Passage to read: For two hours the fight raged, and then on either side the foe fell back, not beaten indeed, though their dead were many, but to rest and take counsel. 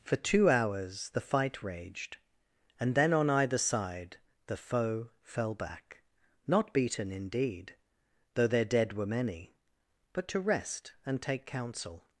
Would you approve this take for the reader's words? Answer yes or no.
yes